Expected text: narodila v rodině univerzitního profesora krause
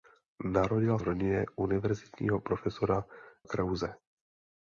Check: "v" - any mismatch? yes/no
no